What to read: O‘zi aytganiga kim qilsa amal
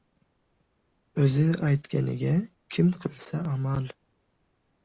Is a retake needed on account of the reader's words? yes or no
no